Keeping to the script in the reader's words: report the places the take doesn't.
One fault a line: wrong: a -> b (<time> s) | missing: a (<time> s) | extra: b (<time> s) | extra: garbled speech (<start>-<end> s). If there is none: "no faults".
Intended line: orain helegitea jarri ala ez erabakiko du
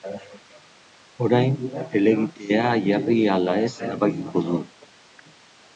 no faults